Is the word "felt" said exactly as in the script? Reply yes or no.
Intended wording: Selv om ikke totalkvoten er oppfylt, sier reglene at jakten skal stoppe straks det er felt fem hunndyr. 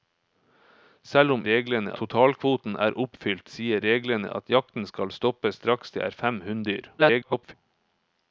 no